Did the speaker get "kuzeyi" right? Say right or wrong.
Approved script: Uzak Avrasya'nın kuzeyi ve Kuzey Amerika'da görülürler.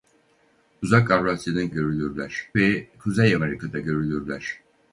wrong